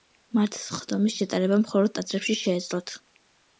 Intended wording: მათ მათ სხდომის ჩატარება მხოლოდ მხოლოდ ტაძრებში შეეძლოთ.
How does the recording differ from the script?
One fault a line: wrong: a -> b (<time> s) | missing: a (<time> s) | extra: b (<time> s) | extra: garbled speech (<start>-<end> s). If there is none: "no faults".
missing: მათ (0.6 s)
missing: მხოლოდ (2.0 s)